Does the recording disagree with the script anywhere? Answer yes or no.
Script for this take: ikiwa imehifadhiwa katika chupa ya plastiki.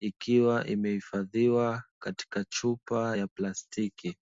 no